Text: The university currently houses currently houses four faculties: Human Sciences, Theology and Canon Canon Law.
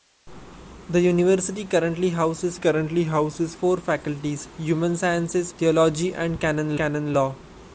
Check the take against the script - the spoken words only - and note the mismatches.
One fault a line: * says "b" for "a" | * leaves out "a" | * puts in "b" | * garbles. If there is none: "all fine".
all fine